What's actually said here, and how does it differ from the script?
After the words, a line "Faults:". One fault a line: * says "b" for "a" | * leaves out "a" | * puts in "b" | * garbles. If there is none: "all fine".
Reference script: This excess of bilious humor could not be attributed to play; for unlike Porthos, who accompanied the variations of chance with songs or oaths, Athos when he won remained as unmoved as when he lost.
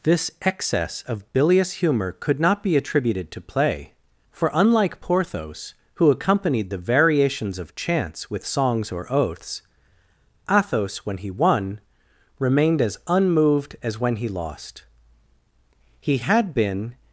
This excess of bilious humor could not be attributed to play; for unlike Porthos, who accompanied the variations of chance with songs or oaths, Athos when he won remained as unmoved as when he lost. He had been
Faults:
* puts in "He had been"